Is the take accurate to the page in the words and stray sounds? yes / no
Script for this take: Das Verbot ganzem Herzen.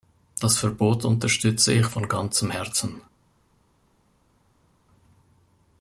no